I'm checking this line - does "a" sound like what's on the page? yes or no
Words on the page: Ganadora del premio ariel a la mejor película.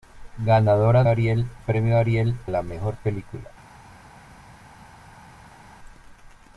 no